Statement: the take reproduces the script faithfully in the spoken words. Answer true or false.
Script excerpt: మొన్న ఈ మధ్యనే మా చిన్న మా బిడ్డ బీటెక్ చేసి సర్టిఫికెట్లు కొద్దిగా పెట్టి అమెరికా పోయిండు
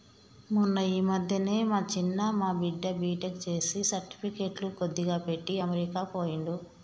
true